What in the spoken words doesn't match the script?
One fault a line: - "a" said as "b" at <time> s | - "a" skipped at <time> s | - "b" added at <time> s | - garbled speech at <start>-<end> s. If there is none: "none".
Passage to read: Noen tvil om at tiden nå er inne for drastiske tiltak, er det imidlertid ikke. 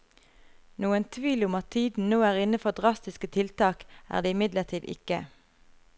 none